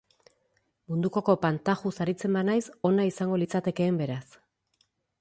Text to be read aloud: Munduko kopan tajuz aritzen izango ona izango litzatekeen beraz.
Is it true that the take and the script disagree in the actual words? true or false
true